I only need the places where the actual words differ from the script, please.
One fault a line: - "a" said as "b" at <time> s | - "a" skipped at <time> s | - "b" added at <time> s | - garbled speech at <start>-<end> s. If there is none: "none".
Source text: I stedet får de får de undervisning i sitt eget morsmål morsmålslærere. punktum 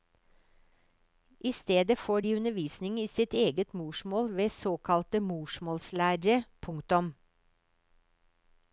- "får de" skipped at 2.3 s
- "ved såkalte" added at 4.4 s